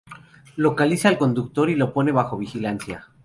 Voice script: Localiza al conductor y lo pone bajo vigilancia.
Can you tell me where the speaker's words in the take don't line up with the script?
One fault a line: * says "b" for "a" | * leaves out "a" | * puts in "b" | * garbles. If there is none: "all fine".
all fine